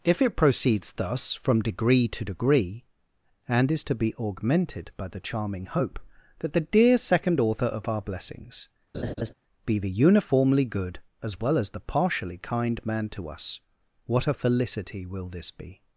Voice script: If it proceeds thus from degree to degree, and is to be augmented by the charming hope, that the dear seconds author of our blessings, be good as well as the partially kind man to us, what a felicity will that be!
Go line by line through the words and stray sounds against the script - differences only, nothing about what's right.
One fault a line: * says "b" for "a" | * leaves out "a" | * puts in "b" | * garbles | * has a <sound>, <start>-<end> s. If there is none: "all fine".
* says "second" for "seconds"
* has a laugh, 8.9-9.3 s
* puts in "the uniformly"
* says "this" for "that"